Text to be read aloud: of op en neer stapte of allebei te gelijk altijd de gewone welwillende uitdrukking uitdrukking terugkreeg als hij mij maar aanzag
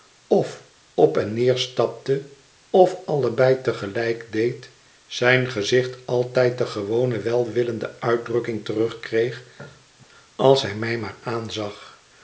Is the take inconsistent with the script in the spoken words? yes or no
yes